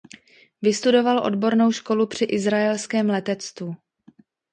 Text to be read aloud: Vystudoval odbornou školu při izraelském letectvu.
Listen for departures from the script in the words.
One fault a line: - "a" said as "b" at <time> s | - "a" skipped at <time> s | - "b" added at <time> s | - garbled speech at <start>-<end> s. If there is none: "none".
none